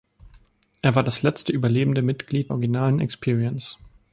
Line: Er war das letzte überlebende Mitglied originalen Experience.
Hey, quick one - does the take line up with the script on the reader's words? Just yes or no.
yes